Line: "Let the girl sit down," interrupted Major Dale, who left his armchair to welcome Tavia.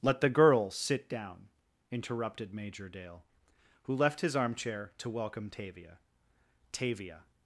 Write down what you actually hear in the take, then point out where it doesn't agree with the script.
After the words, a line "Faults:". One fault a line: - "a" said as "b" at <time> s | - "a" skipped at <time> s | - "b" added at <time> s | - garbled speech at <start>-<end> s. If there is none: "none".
"Let the girl sit down," interrupted Major Dale, who left his armchair to welcome Tavia Tavia.
Faults:
- "Tavia" added at 6.7 s